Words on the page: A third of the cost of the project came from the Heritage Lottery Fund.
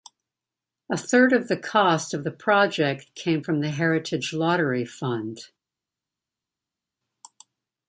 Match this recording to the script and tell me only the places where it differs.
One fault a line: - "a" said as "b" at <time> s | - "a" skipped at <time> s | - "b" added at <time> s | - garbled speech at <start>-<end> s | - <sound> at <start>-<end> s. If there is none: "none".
none